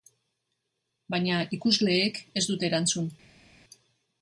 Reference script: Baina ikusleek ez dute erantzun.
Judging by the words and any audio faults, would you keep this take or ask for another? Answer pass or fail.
pass